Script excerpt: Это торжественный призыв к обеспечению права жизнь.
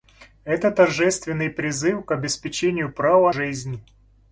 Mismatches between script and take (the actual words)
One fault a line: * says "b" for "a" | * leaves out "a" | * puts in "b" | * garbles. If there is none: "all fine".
all fine